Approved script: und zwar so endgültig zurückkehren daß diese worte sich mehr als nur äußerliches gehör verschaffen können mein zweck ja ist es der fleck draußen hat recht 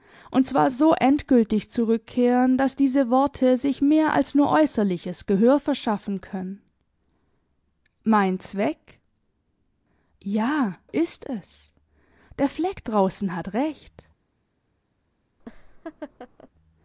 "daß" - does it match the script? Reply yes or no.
yes